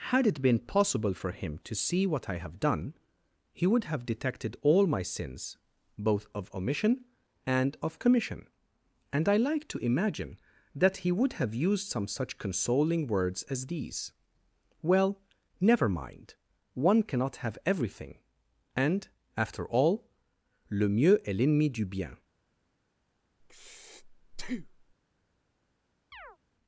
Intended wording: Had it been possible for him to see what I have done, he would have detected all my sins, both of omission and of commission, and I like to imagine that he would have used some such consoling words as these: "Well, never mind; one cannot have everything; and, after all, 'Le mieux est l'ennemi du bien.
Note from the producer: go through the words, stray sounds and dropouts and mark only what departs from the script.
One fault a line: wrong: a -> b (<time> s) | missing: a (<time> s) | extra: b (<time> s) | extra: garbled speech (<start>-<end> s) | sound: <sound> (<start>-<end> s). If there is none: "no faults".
sound: breath (23.4-24.9 s)
sound: chirp (26.1-26.4 s)